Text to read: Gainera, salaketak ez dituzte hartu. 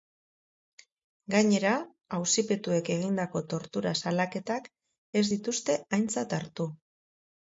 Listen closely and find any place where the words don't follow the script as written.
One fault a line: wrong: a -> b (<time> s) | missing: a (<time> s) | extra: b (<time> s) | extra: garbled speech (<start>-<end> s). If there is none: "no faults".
extra: auzipetuek egindako tortura (2.2 s)
extra: aintzat (6.0 s)